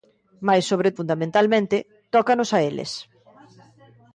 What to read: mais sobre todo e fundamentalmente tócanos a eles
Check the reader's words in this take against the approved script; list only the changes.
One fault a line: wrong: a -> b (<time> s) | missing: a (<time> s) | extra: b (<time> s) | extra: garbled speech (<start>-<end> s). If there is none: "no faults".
missing: todo e (0.9 s)